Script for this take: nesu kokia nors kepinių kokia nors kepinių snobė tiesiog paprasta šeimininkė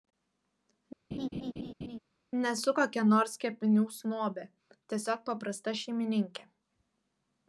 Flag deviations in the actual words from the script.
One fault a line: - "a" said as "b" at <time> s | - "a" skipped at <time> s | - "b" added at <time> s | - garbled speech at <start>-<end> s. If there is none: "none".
- "kokia nors kepinių" skipped at 3.8 s